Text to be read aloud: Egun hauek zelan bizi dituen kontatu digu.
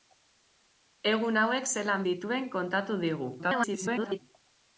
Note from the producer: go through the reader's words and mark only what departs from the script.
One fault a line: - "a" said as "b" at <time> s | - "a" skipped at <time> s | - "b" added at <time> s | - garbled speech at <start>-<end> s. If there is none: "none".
- "bizi" skipped at 2.1 s
- garbled speech at 3.4-4.2 s